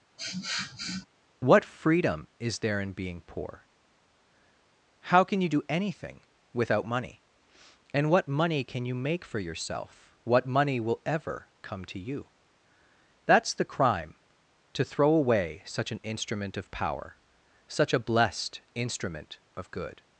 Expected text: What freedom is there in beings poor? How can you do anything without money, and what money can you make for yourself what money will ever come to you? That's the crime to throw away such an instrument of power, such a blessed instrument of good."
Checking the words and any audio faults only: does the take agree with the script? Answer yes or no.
no